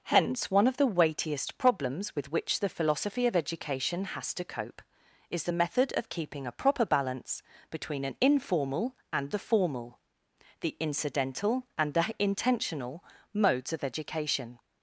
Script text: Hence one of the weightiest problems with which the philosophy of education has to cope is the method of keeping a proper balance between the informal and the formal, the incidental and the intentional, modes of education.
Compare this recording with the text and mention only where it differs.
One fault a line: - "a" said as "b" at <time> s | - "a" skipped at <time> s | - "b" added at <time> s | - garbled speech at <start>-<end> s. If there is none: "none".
- "the" said as "an" at 8.0 s